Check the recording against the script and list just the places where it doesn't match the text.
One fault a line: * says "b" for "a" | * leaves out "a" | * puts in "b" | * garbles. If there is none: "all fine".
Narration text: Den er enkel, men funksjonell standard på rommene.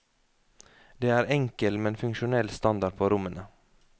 * says "Det" for "Den"